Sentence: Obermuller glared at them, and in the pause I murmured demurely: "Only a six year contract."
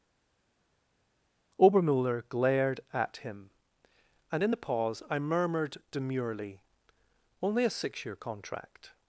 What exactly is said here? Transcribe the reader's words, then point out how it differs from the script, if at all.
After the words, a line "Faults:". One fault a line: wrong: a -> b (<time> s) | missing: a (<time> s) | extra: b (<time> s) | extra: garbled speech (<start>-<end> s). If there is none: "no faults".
Obermuller glared at him, and in the pause I murmured demurely: "Only a six year contract."
Faults:
wrong: them -> him (3.2 s)